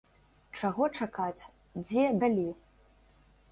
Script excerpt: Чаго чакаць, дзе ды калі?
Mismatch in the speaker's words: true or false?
true